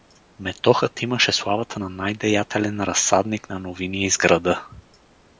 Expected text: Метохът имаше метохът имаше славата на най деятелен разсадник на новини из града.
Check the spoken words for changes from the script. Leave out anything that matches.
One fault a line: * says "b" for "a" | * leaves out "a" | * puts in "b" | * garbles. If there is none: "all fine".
* leaves out "метохът имаше"